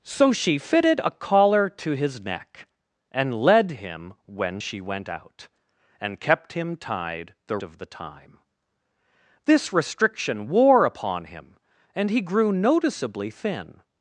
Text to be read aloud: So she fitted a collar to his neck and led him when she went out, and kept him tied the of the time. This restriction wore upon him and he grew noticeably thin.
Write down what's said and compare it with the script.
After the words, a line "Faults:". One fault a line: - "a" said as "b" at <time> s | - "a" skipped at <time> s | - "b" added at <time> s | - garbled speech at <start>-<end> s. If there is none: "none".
So she fitted a collar to his neck and led him when she went out, and kept him tied the of the time. This restriction wore upon him and he grew noticeably thin.
Faults:
none